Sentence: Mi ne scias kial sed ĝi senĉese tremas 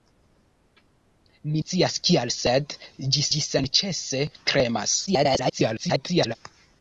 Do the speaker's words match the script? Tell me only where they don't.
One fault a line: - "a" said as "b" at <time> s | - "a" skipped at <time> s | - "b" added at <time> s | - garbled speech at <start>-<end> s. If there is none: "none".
- "ne" skipped at 1.6 s
- "ĝi" added at 3.3 s
- garbled speech at 5.1-6.4 s